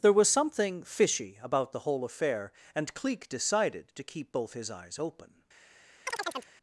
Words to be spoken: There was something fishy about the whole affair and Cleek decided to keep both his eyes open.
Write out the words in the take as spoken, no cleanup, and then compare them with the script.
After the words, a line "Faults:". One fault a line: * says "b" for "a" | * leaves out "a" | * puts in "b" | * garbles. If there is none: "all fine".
There was something fishy about the whole affair and Cleek decided to keep both his eyes open.
Faults:
all fine